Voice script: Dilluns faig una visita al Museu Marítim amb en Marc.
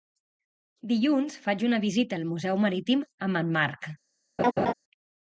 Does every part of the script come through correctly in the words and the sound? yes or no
no